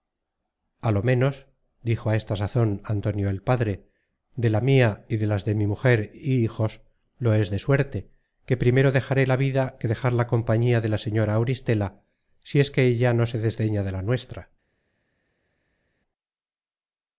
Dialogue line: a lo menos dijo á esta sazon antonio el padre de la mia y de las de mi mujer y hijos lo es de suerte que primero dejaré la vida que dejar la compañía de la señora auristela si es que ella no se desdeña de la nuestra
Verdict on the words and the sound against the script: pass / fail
pass